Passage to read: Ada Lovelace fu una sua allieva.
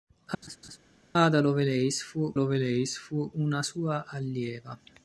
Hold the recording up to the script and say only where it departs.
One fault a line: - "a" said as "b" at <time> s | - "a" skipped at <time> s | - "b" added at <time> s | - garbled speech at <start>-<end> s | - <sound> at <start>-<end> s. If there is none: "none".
- laugh at 0.4-0.8 s
- "Lovelace fu" added at 2.3 s